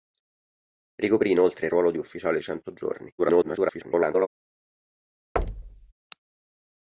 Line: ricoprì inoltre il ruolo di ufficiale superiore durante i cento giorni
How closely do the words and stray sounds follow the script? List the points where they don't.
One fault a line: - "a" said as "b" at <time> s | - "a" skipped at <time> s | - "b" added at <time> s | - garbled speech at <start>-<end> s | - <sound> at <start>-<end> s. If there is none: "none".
- "superiore durante" skipped at 2.4 s
- garbled speech at 3.2-4.3 s
- thud at 5.4-5.9 s